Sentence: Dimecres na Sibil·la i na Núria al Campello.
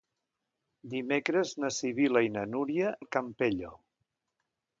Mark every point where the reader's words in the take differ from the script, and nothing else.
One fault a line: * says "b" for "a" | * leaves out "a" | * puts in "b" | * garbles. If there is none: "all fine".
all fine